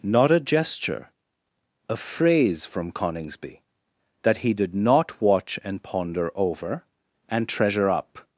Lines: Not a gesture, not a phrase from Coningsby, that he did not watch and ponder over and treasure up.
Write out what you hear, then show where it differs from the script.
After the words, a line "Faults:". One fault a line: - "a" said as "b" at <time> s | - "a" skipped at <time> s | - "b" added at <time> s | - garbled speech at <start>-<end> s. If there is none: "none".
Not a gesture, a phrase from Coningsby, that he did not watch and ponder over and treasure up.
Faults:
- "not" skipped at 1.1 s